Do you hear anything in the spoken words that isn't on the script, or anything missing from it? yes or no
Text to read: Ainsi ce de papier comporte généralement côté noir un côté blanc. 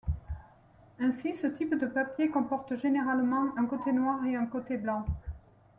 yes